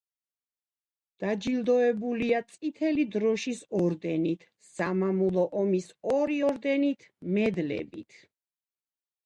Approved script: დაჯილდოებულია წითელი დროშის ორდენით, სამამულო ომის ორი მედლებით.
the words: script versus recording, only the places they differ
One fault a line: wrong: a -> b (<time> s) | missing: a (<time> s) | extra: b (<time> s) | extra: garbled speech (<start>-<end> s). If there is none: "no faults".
extra: ორდენით (6.5 s)